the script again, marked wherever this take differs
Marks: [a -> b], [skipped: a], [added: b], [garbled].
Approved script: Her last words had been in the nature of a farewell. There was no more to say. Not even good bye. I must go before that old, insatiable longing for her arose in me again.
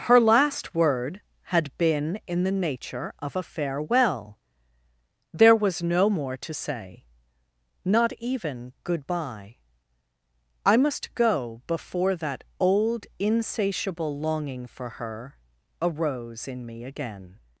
Her last [words -> word] had been in the nature of a farewell. There was no more to say. Not even good bye. I must go before that old, insatiable longing for her arose in me again.